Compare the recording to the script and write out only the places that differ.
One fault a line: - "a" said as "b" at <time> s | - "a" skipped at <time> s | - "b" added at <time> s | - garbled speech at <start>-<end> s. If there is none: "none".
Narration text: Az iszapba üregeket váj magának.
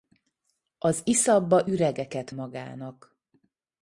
- "váj" skipped at 2.3 s